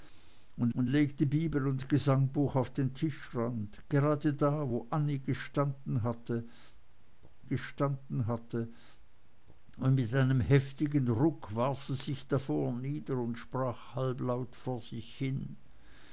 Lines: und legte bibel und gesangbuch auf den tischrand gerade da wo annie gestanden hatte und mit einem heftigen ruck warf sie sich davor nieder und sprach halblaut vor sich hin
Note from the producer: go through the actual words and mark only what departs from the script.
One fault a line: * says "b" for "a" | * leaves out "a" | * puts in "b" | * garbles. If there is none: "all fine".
* puts in "und"
* puts in "gestanden hatte"